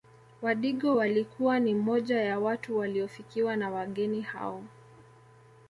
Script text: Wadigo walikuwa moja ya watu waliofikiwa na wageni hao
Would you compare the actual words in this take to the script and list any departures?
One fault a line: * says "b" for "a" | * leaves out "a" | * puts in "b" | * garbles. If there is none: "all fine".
* puts in "ni"